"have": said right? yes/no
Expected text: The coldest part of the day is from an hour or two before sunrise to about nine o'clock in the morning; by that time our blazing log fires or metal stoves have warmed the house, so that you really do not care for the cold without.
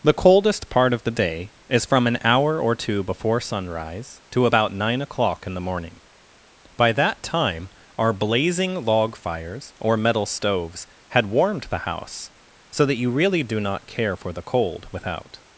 no